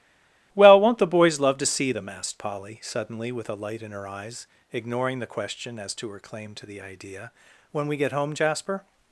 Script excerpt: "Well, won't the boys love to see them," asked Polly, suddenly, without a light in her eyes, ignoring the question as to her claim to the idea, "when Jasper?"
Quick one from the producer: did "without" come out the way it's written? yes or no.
no